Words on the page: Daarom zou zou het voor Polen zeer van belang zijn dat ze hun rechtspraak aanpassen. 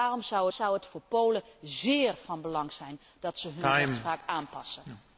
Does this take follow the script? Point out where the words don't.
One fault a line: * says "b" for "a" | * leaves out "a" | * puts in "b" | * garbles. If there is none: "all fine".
all fine